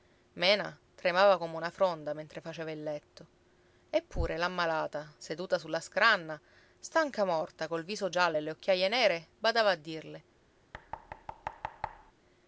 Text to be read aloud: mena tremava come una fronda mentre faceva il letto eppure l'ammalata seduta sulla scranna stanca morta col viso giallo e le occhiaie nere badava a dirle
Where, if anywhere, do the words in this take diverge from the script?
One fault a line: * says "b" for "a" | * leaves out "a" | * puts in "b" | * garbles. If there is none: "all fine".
all fine